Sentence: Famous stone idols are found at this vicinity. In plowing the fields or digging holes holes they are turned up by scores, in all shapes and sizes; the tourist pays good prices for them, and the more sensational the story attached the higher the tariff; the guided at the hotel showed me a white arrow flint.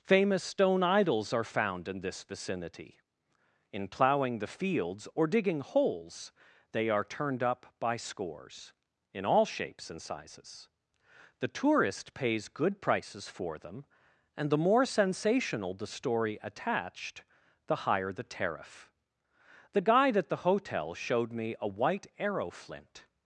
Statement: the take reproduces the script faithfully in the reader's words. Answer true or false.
false